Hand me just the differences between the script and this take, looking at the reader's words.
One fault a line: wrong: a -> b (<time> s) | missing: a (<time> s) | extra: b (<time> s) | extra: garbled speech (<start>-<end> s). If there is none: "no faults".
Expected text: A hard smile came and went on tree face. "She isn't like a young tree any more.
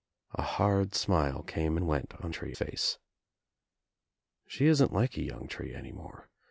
no faults